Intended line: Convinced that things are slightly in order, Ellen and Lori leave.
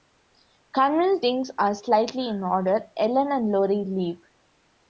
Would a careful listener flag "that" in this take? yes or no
yes